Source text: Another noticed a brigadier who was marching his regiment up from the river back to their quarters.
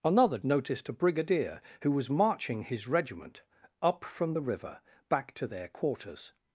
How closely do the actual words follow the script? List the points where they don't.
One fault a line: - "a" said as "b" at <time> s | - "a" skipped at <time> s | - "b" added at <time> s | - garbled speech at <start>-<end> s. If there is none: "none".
none